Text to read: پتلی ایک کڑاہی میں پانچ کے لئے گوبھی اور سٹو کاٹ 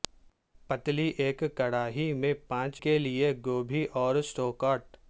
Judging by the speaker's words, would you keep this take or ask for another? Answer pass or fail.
pass